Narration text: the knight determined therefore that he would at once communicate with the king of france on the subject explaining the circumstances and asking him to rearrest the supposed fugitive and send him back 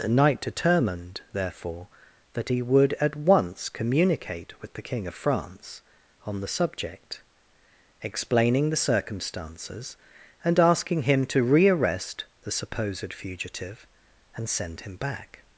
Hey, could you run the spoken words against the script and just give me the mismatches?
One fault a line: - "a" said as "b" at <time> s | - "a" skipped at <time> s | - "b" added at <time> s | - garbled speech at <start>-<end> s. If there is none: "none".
none